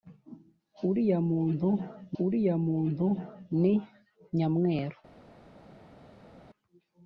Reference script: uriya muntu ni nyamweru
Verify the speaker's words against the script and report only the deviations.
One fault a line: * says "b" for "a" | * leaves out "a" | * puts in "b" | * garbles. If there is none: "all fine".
* puts in "uriya muntu"